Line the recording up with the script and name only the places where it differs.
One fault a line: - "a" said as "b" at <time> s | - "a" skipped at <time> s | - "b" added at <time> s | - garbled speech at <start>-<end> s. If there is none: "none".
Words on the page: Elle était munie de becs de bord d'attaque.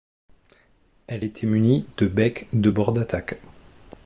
none